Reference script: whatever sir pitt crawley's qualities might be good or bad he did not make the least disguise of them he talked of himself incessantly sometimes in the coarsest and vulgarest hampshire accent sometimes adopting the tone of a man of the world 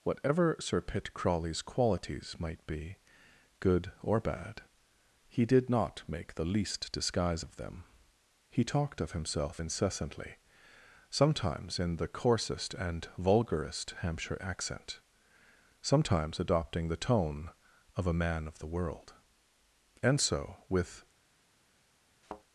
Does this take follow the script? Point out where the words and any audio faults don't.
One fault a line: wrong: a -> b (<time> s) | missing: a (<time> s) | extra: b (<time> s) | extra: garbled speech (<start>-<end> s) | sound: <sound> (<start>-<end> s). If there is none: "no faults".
extra: and so with (20.0 s)
sound: thud (22.2-22.4 s)